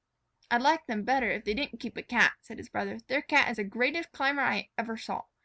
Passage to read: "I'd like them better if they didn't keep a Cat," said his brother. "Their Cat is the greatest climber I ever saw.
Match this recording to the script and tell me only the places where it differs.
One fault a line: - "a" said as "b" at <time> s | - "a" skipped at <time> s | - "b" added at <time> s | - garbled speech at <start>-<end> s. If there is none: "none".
none